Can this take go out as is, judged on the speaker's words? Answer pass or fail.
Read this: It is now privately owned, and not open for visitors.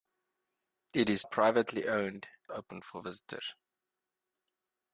fail